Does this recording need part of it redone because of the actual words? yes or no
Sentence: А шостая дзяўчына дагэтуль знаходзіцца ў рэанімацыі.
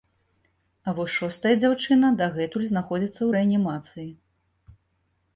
yes